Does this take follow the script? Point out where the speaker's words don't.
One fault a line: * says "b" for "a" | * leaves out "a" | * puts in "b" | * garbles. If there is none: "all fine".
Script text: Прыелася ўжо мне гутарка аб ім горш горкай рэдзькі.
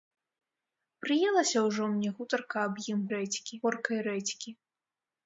* says "рэдзькі" for "горш"